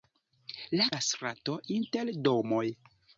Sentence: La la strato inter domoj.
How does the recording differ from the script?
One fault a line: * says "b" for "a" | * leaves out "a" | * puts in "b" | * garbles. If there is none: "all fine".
all fine